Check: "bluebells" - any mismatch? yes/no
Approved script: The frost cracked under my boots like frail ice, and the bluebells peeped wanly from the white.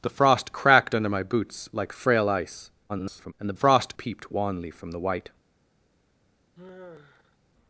yes